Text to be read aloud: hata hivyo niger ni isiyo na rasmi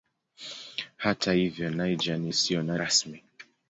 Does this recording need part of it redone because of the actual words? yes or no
no